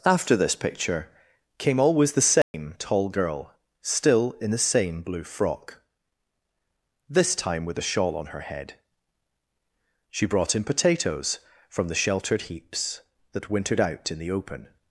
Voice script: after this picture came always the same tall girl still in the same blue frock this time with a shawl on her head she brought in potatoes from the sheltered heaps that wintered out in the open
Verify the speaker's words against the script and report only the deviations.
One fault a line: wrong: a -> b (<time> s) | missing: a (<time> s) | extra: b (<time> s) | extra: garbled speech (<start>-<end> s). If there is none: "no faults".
no faults